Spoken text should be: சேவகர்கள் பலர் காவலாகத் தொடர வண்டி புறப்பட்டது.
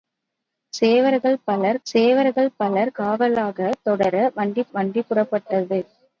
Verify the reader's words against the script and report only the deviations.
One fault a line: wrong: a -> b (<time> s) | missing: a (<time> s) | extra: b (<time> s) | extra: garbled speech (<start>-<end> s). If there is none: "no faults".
extra: சேவகர்கள் பலர் (1.9 s)
extra: வண்டி (4.7 s)